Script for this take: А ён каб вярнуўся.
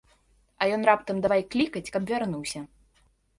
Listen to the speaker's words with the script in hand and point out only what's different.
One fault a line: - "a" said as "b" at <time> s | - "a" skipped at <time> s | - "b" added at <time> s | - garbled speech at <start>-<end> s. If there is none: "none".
- "раптам давай клікаць" added at 0.9 s